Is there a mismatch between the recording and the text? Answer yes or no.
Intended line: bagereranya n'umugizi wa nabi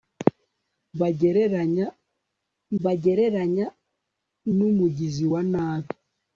yes